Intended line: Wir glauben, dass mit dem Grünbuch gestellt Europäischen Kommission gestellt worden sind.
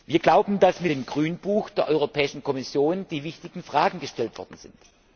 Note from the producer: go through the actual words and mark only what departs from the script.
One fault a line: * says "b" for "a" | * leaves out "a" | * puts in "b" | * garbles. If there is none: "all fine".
* says "der" for "gestellt"
* puts in "die wichtigen Fragen"